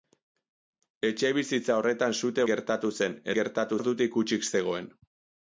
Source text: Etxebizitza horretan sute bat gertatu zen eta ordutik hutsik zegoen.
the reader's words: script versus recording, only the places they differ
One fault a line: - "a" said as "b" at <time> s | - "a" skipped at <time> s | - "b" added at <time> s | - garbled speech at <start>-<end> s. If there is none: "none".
- "bat" skipped at 2.5 s
- "eta" said as "gertatu" at 3.4 s